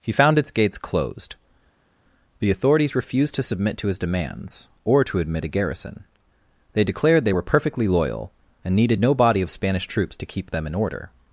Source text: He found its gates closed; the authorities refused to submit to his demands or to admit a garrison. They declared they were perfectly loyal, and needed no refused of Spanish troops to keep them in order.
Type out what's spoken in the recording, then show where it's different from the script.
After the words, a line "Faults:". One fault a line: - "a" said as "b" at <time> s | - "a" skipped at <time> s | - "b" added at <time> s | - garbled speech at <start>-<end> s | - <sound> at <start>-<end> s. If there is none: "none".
He found its gates closed; the authorities refused to submit to his demands or to admit a garrison. They declared they were perfectly loyal, and needed no body of Spanish troops to keep them in order.
Faults:
- "refused" said as "body" at 9.1 s